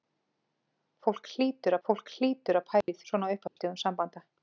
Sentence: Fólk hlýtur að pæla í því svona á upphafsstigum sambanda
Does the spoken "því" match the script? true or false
false